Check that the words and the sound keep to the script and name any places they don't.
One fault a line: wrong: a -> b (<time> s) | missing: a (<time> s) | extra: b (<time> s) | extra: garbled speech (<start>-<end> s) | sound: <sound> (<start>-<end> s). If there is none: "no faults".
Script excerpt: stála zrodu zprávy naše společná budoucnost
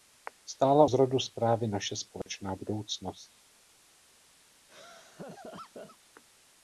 sound: dropout (2.2-2.3 s)
sound: laugh (4.7-6.0 s)